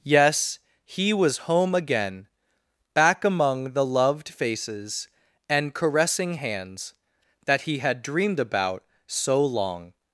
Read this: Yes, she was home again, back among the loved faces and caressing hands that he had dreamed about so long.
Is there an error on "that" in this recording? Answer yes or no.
no